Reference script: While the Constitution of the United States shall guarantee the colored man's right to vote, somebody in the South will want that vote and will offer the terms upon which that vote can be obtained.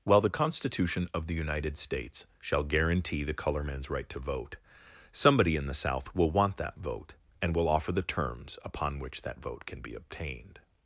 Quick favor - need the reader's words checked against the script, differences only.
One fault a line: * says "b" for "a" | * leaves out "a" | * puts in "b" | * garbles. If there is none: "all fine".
* says "color" for "colored"